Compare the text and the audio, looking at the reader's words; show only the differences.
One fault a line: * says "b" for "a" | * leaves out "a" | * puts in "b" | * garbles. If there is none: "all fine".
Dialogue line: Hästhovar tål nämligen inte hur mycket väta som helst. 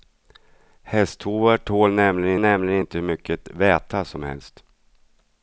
* puts in "nämligen"